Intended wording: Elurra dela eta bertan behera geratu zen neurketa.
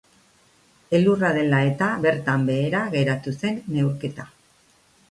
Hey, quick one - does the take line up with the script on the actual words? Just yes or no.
yes